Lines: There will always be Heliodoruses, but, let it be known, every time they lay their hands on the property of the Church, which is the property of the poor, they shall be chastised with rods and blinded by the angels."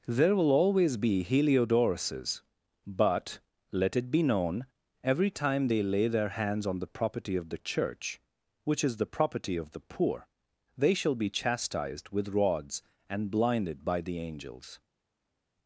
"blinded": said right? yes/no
yes